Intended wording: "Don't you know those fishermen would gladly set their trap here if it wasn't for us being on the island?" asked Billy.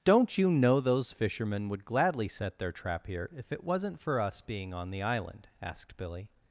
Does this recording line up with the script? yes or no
yes